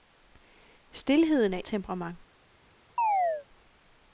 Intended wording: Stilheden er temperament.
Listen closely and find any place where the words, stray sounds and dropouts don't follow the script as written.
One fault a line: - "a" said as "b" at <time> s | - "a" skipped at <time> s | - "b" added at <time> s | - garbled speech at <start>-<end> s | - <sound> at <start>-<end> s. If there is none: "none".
- chirp at 3.0-3.5 s